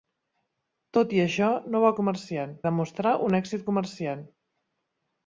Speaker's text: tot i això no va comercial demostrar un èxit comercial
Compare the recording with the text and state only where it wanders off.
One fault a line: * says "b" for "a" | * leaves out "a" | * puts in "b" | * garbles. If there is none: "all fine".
all fine